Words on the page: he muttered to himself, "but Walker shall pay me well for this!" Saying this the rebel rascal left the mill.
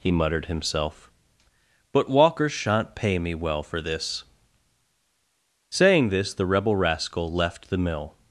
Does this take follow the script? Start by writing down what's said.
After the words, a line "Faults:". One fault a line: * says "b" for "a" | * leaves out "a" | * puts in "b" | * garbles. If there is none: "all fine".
he muttered himself, "but Walker shan't pay me well for this!" Saying this the rebel rascal left the mill.
Faults:
* leaves out "to"
* says "shan't" for "shall"